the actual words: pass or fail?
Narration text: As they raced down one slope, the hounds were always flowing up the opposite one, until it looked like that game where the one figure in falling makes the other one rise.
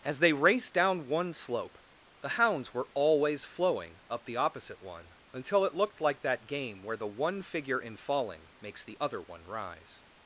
pass